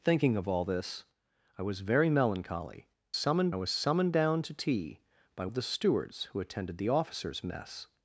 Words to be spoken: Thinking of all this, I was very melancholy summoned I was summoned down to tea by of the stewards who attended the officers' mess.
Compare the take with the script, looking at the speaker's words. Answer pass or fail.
pass